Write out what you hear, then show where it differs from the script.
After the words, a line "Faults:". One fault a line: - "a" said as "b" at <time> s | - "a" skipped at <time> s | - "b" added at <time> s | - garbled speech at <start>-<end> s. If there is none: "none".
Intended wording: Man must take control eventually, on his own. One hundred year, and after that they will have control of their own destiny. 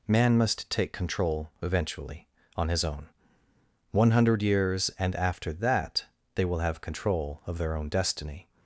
Man must take control eventually, on his own. One hundred years, and after that they will have control of their own destiny.
Faults:
- "year" said as "years" at 4.4 s